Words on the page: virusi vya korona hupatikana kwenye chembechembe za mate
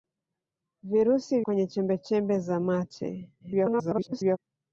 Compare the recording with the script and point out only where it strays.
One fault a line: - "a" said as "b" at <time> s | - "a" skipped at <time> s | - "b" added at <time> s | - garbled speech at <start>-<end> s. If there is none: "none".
- "vya korona hupatikana" skipped at 1.4 s
- garbled speech at 3.4-4.4 s